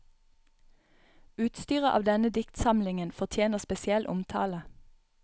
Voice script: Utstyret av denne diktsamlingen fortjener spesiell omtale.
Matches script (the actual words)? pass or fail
pass